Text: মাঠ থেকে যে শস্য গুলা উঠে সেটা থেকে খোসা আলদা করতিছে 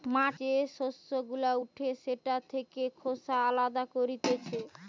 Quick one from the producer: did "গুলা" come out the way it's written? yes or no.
yes